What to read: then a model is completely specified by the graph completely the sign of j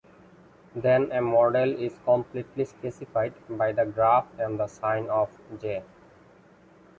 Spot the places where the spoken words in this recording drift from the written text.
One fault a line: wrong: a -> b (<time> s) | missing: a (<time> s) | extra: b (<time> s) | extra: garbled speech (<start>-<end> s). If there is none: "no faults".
wrong: completely -> and (4.4 s)